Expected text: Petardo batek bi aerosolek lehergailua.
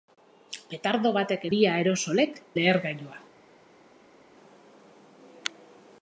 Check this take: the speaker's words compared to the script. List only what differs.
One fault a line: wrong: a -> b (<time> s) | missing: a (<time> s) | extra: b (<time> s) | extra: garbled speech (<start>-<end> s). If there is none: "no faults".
no faults